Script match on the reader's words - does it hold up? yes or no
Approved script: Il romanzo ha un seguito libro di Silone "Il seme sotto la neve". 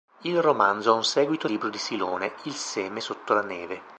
yes